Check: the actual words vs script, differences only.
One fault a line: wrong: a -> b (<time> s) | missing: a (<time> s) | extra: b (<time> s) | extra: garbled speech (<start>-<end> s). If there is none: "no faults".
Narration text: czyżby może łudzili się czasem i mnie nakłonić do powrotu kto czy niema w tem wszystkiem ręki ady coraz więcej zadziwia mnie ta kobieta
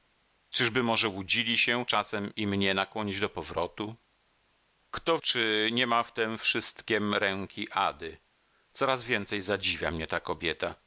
no faults